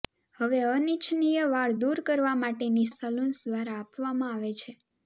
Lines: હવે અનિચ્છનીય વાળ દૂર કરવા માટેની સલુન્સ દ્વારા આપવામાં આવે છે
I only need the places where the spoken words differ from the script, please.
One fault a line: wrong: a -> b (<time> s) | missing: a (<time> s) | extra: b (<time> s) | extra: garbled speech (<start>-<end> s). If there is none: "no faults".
no faults